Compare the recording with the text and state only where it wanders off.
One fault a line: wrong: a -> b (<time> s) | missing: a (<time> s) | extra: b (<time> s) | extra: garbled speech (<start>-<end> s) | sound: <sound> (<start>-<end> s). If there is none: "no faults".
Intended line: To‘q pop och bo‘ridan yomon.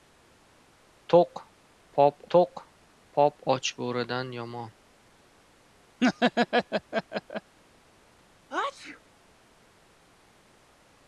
extra: to‘q pop (2.3 s)
sound: laugh (6.0-7.6 s)
sound: sneeze (8.5-9.0 s)